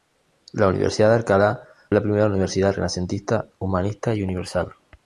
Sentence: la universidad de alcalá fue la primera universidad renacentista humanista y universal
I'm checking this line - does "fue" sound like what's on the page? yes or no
no